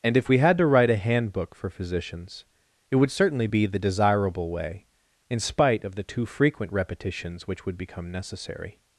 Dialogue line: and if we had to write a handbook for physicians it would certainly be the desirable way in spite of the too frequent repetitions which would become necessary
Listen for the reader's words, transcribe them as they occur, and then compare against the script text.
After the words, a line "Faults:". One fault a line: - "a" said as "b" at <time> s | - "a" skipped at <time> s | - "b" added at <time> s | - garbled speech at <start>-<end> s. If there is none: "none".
and if we had to write a handbook for physicians it would certainly be the desirable way in spite of the too frequent repetitions which would become necessary
Faults:
none